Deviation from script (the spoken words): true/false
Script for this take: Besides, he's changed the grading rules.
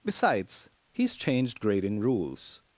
true